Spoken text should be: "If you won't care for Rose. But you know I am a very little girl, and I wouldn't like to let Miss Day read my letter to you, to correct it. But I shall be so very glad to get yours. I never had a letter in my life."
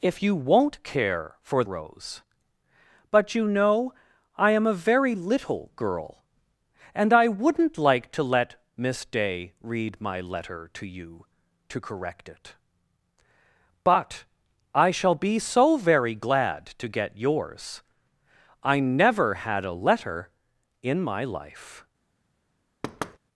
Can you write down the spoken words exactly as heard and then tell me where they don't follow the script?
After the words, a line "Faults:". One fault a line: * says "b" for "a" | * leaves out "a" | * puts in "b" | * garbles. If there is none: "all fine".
"If you won't care for Rose. But you know I am a very little girl, and I wouldn't like to let Miss Day read my letter to you, to correct it. But I shall be so very glad to get yours. I never had a letter in my life."
Faults:
all fine